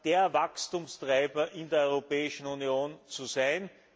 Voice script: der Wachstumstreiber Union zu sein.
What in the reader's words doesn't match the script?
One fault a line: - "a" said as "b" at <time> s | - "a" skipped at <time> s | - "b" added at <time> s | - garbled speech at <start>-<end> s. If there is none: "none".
- "in der Europäischen" added at 1.5 s